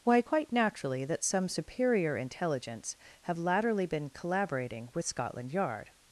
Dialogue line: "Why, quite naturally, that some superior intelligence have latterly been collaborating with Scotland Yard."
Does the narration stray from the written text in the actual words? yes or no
no